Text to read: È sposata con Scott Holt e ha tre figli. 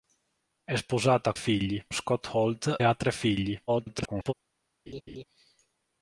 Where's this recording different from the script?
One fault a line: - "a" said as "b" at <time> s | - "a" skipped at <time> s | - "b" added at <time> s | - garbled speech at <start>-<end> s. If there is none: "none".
- "con" said as "figli" at 1.3 s
- "e" skipped at 2.8 s
- garbled speech at 3.7-4.3 s